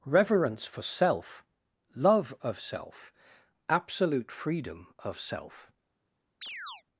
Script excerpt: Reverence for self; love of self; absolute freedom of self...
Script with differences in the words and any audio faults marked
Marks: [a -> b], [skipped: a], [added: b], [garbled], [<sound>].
Reverence for self; love of self; absolute freedom of self... [chirp]